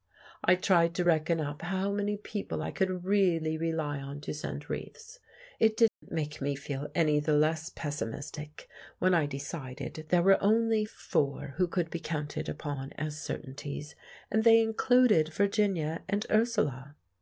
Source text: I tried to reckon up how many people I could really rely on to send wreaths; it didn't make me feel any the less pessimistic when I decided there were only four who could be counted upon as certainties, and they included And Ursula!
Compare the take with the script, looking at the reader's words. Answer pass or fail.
fail